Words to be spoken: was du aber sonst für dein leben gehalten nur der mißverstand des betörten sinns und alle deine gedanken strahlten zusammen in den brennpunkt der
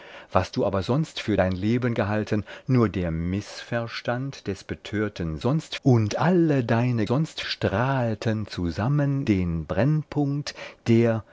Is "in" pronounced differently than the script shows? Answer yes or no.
yes